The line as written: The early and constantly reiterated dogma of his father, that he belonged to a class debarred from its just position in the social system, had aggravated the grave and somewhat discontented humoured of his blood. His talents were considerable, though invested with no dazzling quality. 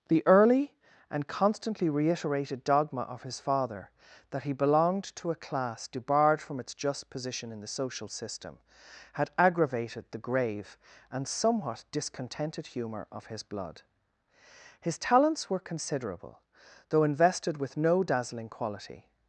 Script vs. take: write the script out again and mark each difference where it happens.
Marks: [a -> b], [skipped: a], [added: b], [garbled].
The early and constantly reiterated dogma of his father, that he belonged to a class debarred from its just position in the social system, had aggravated the grave and somewhat discontented [humoured -> humour] of his blood. His talents were considerable, though invested with no dazzling quality.